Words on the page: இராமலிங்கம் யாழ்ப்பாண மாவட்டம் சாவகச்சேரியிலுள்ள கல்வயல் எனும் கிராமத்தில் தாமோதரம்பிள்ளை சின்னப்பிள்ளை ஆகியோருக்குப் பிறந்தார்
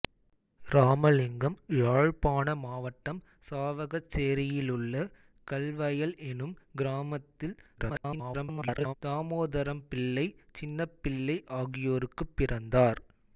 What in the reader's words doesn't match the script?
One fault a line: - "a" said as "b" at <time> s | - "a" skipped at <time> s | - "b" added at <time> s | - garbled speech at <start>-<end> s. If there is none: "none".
- garbled speech at 7.8-8.9 s